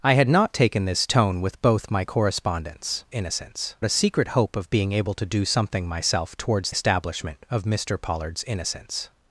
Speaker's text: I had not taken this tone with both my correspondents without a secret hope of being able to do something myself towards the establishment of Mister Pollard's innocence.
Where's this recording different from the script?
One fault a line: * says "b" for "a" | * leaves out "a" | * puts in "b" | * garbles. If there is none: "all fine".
* says "innocence" for "without"
* leaves out "the"